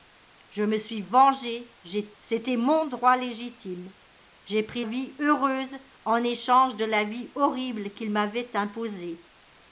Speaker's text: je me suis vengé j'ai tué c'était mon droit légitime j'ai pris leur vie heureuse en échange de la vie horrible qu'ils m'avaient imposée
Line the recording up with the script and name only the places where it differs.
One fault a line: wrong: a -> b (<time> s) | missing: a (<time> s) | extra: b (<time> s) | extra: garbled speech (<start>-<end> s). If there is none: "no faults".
missing: tué (2.1 s)
missing: leur (4.8 s)